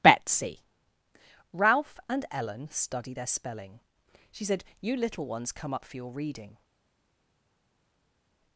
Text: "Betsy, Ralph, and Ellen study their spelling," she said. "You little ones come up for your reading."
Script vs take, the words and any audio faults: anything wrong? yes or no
no